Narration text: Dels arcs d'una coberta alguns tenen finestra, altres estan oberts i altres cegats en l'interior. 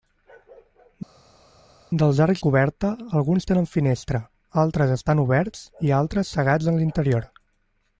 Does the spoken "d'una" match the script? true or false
false